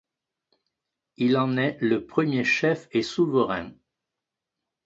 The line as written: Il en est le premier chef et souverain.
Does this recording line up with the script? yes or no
yes